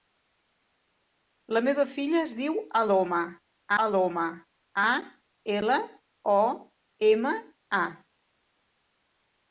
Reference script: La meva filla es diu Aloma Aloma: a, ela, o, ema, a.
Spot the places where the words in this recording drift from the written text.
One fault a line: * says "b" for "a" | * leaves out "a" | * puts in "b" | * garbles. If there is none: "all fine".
all fine